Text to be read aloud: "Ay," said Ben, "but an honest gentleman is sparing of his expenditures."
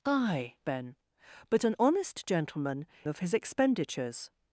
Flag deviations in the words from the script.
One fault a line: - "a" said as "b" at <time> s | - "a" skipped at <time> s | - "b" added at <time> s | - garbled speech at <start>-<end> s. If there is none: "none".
- "said" skipped at 0.6 s
- "is sparing" skipped at 2.8 s